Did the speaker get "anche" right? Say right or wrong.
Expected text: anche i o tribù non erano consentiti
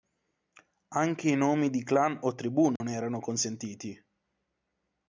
right